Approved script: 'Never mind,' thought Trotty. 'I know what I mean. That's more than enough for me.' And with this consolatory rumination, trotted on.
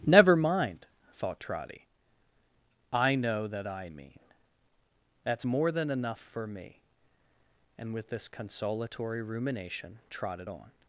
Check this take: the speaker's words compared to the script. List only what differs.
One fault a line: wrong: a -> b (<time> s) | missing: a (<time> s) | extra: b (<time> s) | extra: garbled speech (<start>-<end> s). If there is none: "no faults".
wrong: what -> that (3.5 s)